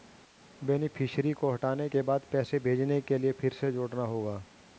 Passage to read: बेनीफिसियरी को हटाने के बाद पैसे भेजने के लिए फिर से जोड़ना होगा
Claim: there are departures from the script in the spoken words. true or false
false